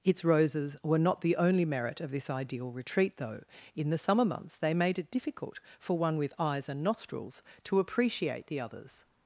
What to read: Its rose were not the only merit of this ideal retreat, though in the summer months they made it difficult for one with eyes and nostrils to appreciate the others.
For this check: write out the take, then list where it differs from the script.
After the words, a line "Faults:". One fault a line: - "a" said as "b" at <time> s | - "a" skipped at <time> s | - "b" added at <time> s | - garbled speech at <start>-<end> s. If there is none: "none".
Its roses were not the only merit of this ideal retreat, though in the summer months they made it difficult for one with eyes and nostrils to appreciate the others.
Faults:
- "rose" said as "roses" at 0.2 s